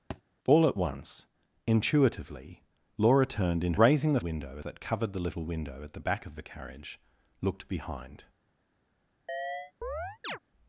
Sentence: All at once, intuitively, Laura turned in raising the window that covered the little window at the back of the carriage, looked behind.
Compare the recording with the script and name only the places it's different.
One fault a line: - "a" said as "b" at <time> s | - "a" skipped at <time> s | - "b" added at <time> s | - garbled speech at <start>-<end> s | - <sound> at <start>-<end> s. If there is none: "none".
- thud at 0.1-0.2 s
- chirp at 9.3-10.4 s